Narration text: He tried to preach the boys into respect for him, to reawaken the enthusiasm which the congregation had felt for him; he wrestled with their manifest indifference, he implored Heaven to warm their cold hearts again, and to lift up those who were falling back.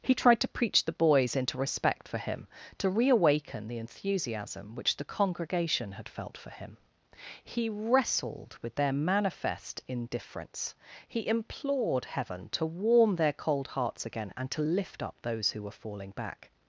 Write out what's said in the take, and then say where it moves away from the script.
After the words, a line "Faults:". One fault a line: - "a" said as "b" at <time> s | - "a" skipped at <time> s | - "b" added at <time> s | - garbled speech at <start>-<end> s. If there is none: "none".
He tried to preach the boys into respect for him, to reawaken the enthusiasm which the congregation had felt for him; he wrestled with their manifest indifference, he implored Heaven to warm their cold hearts again, and to lift up those who were falling back.
Faults:
none